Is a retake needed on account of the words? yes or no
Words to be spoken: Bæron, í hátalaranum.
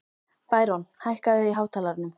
yes